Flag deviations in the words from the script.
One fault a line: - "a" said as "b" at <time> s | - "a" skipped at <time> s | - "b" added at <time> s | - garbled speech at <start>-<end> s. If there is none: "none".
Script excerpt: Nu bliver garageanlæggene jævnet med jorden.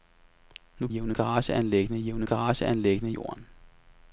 - "bliver" said as "jævnet" at 0.9 s
- "med" said as "garageanlæggene" at 2.2 s